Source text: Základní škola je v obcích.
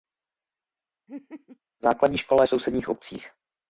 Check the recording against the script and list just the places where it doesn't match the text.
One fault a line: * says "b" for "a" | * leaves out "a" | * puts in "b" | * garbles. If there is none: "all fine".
* puts in "sousedních"